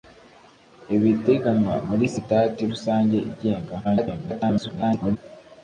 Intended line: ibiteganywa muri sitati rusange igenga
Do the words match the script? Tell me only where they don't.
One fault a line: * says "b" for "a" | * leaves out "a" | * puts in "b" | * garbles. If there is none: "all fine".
* garbles